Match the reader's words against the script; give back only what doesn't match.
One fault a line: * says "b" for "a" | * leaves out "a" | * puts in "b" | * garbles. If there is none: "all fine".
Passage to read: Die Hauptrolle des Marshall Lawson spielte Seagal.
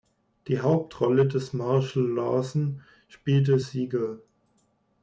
all fine